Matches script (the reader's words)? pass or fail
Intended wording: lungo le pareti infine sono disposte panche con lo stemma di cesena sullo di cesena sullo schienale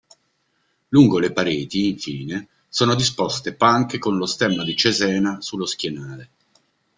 fail